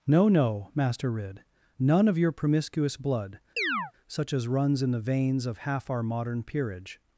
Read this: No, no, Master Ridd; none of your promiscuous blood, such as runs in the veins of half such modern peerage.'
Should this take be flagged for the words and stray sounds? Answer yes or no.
yes